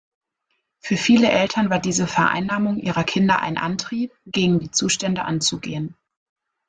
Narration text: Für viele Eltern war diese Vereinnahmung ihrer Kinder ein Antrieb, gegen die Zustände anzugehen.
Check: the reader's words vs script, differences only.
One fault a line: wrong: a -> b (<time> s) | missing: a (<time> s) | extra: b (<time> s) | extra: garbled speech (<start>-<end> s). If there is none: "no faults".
no faults